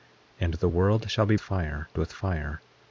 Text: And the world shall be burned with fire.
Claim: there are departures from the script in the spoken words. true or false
true